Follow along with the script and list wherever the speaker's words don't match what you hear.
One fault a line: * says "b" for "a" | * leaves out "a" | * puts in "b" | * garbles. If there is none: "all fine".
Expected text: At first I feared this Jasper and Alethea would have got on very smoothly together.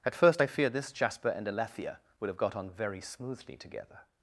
all fine